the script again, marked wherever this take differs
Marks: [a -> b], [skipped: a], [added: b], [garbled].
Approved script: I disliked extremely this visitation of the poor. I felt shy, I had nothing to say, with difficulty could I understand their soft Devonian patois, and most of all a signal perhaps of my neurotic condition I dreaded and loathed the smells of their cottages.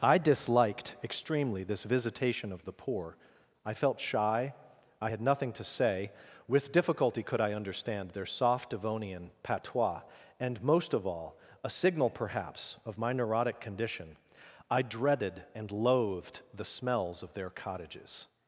I disliked extremely this visitation of the poor. I felt shy, I had nothing to say, with difficulty could I understand their soft Devonian patois, and most of all a signal perhaps of my neurotic condition I dreaded and loathed the smells of their cottages.